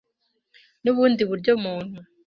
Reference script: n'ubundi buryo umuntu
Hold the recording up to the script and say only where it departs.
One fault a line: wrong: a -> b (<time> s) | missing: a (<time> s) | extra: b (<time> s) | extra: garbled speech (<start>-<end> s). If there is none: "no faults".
no faults